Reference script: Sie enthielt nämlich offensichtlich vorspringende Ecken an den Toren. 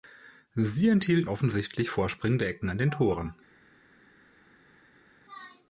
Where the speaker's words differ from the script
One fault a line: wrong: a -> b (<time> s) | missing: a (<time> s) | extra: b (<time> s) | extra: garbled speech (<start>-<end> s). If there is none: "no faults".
missing: nämlich (1.3 s)